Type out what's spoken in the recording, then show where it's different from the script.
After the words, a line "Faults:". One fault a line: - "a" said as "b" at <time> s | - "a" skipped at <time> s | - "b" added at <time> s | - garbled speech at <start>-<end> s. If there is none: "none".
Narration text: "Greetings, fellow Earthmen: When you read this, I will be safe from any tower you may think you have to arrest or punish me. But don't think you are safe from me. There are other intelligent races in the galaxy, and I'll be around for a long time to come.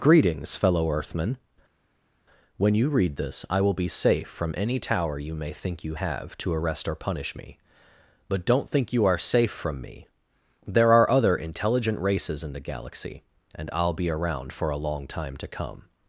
"Greetings, fellow Earthmen: When you read this, I will be safe from any tower you may think you have to arrest or punish me. But don't think you are safe from me. There are other intelligent races in the galaxy, and I'll be around for a long time to come.
Faults:
none